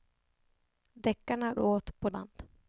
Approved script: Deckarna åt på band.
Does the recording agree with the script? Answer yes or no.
yes